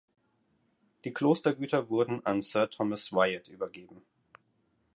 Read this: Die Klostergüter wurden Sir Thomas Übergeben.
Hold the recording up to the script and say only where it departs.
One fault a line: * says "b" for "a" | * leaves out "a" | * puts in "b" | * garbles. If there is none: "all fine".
* puts in "an"
* puts in "Wyatt"